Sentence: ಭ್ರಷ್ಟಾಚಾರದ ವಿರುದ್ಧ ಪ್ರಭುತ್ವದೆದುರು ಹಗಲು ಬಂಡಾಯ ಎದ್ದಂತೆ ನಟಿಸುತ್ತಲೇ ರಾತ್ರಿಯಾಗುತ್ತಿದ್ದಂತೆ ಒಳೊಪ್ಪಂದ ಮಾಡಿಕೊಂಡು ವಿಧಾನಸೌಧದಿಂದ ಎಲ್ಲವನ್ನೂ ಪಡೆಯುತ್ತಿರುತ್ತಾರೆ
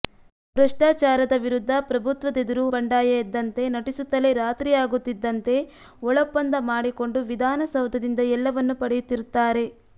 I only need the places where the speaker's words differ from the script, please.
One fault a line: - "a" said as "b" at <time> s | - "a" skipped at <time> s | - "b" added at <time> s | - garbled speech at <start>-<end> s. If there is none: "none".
- "ಹಗಲು" skipped at 2.6 s